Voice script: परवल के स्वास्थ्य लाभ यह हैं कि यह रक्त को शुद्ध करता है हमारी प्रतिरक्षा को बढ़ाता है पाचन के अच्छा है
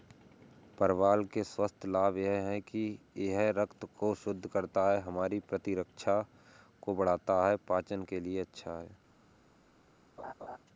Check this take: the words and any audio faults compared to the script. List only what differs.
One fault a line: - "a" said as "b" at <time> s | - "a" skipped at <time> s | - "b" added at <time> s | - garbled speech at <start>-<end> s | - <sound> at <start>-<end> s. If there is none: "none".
- "लिए" added at 8.2 s
- laugh at 10.2-10.6 s